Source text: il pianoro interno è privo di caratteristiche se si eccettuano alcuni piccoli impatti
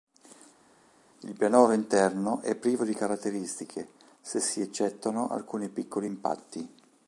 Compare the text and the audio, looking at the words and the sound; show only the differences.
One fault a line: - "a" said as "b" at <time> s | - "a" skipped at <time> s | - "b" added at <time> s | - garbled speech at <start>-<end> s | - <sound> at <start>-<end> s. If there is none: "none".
none